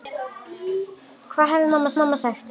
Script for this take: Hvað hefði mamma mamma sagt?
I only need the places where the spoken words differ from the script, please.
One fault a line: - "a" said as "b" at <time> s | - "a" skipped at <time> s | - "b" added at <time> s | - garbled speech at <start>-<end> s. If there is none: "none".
none